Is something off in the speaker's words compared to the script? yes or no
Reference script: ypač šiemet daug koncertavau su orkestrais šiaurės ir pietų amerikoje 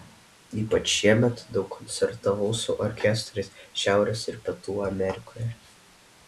no